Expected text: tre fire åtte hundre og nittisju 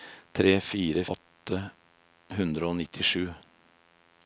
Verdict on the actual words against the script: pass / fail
pass